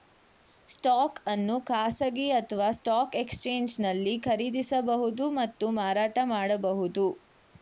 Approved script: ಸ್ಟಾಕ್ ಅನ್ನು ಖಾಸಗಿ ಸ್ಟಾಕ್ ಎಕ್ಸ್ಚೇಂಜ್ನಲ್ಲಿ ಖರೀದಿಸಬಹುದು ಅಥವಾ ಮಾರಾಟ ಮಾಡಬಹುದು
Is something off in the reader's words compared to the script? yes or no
yes